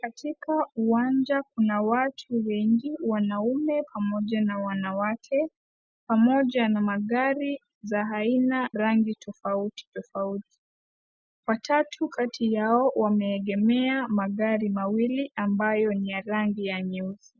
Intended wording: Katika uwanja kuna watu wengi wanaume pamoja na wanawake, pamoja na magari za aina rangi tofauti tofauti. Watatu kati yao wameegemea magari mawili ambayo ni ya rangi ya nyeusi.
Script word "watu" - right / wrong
right